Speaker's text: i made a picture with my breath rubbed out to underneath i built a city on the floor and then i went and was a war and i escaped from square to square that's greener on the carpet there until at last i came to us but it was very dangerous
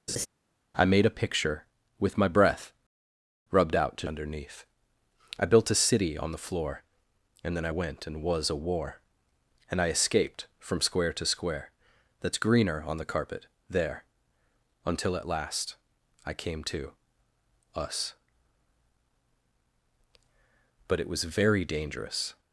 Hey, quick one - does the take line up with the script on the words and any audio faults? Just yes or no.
no